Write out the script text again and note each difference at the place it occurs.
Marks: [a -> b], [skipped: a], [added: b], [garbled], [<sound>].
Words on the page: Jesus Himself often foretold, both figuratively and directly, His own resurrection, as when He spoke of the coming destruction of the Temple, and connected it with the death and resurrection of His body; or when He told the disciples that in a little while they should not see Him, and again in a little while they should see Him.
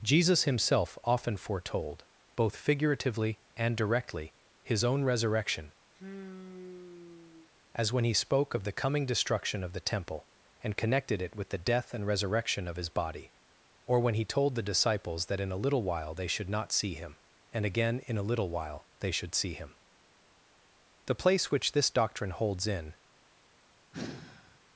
Jesus Himself often foretold, both figuratively and directly, His own resurrection, [sigh] as when He spoke of the coming destruction of the Temple, and connected it with the death and resurrection of His body; or when He told the disciples that in a little while they should not see Him, and again in a little while they should see Him. [added: The place which this doctrine holds in] [sigh]